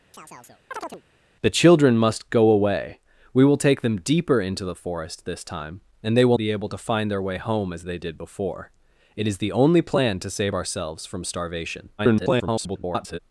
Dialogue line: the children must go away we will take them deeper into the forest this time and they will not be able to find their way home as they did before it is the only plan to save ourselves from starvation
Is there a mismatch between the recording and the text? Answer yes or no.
yes